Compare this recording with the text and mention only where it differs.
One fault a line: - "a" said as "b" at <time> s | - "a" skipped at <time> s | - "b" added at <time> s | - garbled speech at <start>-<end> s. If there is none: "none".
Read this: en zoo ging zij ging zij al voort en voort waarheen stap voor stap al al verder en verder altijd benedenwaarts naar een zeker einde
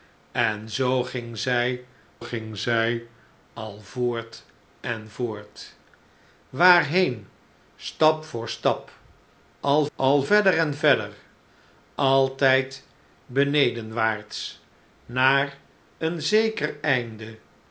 none